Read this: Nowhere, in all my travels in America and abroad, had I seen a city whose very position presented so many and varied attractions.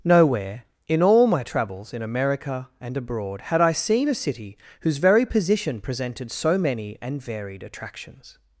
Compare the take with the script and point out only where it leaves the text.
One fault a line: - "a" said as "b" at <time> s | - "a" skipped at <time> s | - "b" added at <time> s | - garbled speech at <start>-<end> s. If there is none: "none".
none